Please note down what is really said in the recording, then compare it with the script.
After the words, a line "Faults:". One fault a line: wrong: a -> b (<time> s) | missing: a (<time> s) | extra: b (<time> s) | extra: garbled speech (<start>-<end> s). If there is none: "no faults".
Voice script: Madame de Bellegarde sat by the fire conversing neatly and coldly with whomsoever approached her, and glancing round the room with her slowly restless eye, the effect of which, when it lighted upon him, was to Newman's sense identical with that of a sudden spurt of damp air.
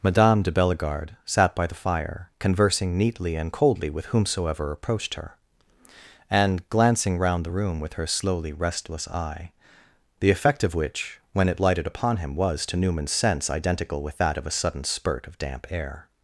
Madame de Bellegarde sat by the fire conversing neatly and coldly with whomsoever approached her, and glancing round the room with her slowly restless eye, the effect of which, when it lighted upon him, was to Newman's sense identical with that of a sudden spurt of damp air.
Faults:
no faults